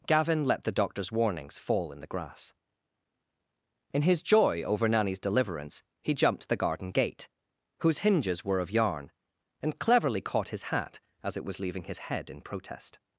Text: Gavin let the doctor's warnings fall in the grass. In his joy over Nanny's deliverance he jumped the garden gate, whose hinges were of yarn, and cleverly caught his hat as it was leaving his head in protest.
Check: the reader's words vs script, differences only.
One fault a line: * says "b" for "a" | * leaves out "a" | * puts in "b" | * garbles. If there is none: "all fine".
all fine